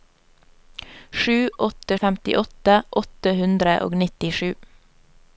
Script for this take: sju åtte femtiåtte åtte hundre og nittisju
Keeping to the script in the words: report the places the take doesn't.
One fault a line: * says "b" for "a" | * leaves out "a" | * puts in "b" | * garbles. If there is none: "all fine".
all fine